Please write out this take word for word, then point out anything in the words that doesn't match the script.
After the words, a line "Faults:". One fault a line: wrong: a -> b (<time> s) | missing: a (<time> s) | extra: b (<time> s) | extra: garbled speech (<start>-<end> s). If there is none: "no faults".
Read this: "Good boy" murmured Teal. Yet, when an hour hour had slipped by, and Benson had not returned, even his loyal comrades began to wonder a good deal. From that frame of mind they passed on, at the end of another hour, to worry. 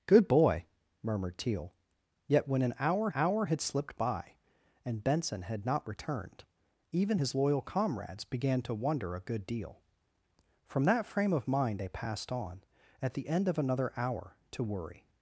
"Good boy" murmured Teal. Yet, when an hour hour had slipped by, and Benson had not returned, even his loyal comrades began to wonder a good deal. From that frame of mind they passed on, at the end of another hour, to worry.
Faults:
no faults